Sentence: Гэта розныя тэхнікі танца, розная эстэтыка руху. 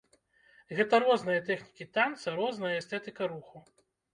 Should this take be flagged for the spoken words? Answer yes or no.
no